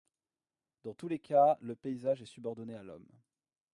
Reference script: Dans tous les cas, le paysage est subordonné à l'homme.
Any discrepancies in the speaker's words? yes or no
no